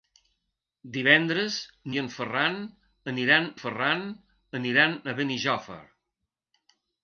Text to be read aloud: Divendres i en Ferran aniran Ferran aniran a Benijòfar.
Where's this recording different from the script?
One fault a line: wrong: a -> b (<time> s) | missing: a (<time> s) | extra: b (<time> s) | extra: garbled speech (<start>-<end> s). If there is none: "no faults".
no faults